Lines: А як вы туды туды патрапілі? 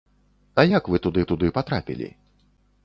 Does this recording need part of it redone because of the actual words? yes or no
no